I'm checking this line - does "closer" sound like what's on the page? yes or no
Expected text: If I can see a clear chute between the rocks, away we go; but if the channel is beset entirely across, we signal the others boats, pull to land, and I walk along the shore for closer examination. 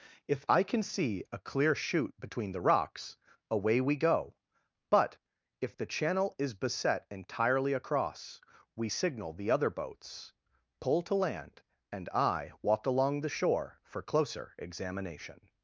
yes